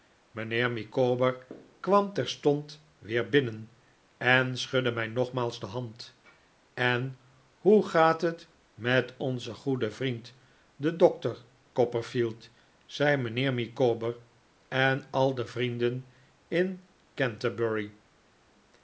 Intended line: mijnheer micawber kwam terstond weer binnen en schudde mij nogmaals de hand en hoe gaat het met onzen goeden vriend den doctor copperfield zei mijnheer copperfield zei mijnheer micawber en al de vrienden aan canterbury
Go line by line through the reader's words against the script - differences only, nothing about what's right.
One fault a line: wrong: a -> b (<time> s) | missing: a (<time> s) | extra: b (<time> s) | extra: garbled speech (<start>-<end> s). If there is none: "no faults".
missing: copperfield zei mijnheer (13.5 s)
wrong: aan -> in (16.5 s)